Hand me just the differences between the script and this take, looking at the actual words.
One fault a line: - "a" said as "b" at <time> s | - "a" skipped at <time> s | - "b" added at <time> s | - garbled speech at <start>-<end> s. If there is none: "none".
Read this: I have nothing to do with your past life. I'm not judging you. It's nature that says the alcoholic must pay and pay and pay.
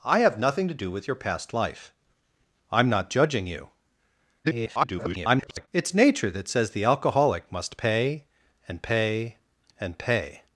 - garbled speech at 4.4-5.7 s